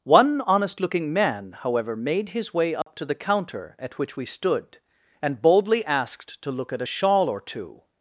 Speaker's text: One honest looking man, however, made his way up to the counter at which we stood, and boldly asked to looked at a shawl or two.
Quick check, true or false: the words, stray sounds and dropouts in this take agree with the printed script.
false